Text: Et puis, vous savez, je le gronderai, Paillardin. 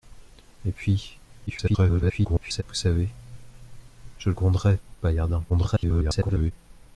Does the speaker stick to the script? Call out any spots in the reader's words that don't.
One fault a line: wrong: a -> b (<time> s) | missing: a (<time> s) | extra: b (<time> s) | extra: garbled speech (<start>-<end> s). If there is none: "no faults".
extra: garbled speech (1.5-2.6 s)
missing: le (4.3 s)
extra: garbled speech (5.5-6.5 s)